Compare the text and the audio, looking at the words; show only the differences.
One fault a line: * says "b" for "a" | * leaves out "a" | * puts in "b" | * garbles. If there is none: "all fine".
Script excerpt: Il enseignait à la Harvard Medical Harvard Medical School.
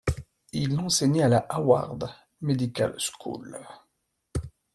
* leaves out "Harvard Medical"